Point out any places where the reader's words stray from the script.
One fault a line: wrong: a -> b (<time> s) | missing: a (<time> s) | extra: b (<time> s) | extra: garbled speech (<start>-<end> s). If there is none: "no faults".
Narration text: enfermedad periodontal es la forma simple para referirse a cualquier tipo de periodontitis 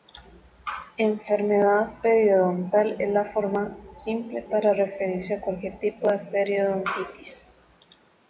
no faults